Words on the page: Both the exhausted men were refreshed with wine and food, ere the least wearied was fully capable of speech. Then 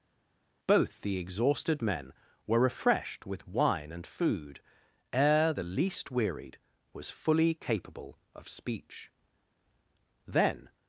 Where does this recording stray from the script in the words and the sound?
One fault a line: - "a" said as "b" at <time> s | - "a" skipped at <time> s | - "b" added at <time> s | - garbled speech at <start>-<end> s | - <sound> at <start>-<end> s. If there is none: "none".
none